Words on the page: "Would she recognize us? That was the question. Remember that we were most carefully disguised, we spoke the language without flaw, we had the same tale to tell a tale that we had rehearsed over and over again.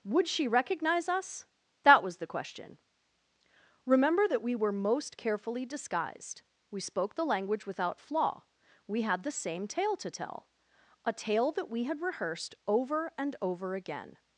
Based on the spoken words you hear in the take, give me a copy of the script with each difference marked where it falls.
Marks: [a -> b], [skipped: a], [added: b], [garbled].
"Would she recognize us? That was the question. Remember that we were most carefully disguised, we spoke the language without flaw, we had the same tale to tell a tale that we had rehearsed over and over again.